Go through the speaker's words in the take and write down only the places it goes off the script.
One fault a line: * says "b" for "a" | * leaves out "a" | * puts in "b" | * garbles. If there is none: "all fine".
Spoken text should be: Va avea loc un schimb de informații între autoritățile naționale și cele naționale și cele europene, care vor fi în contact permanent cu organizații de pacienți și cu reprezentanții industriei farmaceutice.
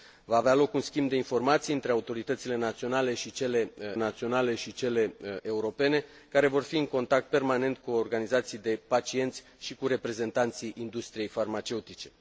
all fine